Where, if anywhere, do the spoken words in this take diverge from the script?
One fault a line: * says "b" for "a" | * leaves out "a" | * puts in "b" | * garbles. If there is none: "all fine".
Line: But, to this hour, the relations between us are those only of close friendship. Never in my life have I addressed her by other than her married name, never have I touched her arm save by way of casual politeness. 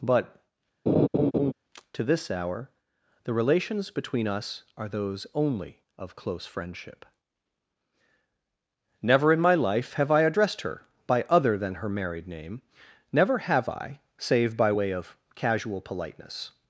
* leaves out "touched her arm"